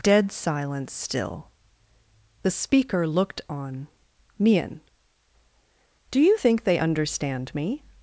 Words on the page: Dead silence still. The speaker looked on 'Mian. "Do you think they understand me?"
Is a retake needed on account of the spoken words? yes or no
no